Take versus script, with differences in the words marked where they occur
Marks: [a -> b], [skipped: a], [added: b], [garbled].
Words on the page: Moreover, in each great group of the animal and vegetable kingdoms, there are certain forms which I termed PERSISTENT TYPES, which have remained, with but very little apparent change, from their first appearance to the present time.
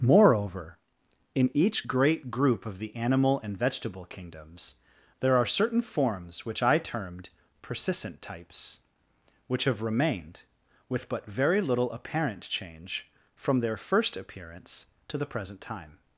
Moreover, in each great group of the animal and vegetable kingdoms, there are certain forms which I termed PERSISTENT TYPES, which have remained, with but very little apparent change, from their first appearance to the present time.